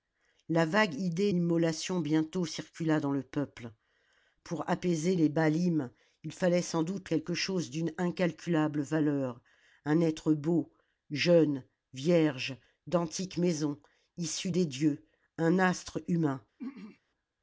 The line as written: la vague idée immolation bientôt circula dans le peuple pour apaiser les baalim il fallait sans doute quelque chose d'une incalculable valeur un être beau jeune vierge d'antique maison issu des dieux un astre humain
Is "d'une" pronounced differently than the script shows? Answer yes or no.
no